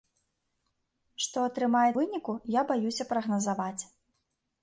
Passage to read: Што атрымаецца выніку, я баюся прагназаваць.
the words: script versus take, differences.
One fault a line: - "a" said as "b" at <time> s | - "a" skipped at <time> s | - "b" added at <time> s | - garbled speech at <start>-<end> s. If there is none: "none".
none